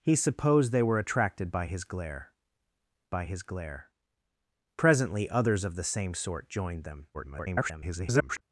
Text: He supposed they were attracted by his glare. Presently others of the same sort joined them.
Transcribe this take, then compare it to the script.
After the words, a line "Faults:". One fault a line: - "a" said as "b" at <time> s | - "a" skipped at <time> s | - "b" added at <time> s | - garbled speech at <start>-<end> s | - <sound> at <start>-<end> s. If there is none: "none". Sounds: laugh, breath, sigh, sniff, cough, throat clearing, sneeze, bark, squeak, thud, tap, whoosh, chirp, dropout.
He supposed they were attracted by his glare by his glare. Presently others of the same sort joined them. [garbled]
Faults:
- "by his glare" added at 3.1 s
- garbled speech at 7.1-8.4 s